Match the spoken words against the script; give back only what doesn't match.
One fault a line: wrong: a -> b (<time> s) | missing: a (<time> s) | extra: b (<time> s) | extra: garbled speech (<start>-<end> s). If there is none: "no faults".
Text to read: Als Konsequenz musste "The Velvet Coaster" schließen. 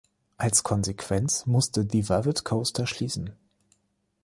no faults